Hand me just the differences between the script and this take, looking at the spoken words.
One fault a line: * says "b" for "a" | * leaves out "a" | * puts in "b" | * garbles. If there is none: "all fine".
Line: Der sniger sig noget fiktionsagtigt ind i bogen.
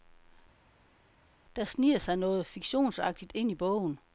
all fine